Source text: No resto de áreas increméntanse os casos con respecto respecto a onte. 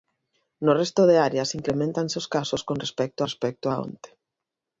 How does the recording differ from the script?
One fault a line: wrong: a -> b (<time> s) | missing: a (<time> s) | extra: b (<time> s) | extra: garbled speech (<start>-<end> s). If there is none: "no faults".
no faults